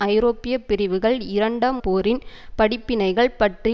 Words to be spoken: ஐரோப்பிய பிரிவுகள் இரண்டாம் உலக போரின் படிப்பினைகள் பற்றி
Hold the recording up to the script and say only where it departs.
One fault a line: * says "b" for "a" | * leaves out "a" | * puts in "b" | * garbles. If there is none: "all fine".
* leaves out "உலக"